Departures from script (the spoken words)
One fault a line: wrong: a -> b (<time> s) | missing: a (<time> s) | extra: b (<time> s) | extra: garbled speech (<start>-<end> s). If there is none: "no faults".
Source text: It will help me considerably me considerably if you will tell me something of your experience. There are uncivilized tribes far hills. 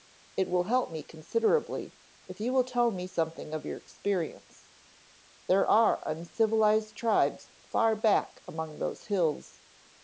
missing: me considerably (1.9 s)
extra: back among those (7.9 s)